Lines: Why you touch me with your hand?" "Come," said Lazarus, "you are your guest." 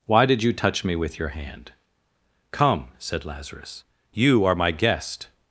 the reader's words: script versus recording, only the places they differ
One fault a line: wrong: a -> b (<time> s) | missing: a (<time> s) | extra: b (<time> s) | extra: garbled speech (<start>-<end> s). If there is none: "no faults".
extra: did (0.2 s)
wrong: your -> my (4.5 s)